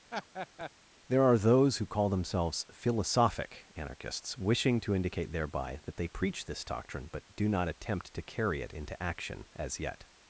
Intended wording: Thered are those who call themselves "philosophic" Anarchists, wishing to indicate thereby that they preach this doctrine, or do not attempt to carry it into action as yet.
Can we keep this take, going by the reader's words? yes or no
no